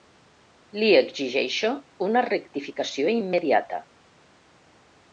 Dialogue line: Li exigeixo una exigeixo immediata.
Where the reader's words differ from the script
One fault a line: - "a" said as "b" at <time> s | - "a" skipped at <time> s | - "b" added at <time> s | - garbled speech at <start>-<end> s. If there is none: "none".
- "exigeixo" said as "rectificació" at 2.3 s